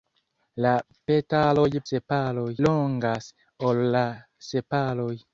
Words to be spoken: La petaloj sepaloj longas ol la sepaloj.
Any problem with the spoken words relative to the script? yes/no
no